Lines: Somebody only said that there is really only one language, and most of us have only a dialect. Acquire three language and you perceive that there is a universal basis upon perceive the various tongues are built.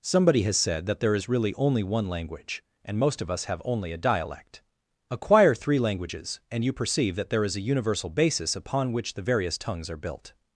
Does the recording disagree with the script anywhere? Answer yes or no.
yes